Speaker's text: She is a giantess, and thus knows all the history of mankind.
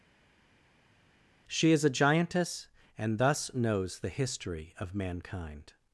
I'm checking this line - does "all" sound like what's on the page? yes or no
no